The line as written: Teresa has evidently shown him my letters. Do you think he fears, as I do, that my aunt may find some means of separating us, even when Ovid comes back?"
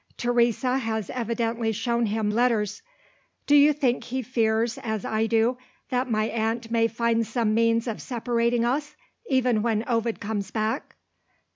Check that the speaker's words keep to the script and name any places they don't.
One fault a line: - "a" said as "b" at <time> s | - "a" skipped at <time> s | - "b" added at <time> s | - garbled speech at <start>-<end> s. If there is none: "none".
- "my" skipped at 2.3 s